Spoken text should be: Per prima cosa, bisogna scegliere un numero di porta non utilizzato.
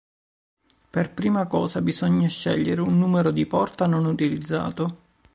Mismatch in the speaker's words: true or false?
false